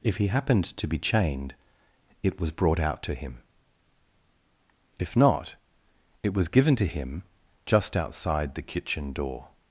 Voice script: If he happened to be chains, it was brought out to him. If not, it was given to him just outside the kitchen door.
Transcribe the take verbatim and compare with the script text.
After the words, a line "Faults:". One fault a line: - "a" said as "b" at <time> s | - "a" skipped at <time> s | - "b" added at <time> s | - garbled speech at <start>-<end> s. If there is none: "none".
If he happened to be chained, it was brought out to him. If not, it was given to him just outside the kitchen door.
Faults:
- "chains" said as "chained" at 1.0 s